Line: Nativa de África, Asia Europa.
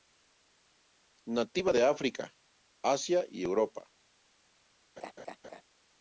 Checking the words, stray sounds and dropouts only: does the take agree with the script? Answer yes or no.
no